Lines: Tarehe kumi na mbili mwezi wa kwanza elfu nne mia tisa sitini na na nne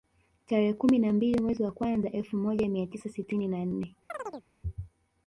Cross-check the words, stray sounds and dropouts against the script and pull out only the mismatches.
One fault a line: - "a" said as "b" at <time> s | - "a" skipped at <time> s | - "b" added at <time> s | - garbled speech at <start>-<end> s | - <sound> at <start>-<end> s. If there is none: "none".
- "nne" said as "moja" at 2.4 s
- "na" skipped at 3.7 s
- chirp at 4.1-4.5 s